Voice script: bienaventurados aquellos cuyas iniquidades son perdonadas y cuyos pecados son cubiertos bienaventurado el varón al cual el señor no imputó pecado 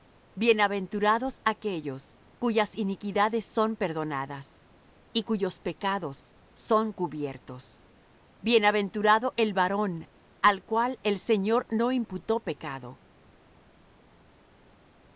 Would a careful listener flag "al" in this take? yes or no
no